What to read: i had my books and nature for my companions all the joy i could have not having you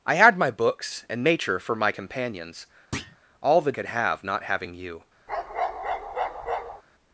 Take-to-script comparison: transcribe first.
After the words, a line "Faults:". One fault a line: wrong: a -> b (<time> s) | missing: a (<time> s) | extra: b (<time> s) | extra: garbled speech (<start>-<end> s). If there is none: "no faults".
i had my books and nature for my companions all the could have not having you
Faults:
missing: joy i (3.7 s)